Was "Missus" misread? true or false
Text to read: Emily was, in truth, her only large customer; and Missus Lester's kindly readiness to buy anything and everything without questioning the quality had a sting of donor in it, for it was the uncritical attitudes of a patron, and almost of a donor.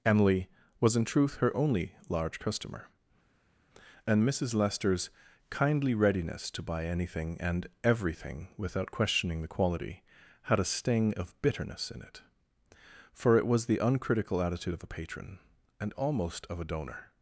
false